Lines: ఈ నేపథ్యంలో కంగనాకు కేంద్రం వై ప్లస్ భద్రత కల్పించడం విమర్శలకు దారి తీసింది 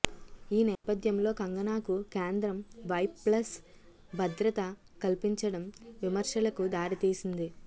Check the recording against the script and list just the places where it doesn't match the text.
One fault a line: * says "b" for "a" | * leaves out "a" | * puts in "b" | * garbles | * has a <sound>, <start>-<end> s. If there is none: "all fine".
* has a dropout, 0.7-0.8 s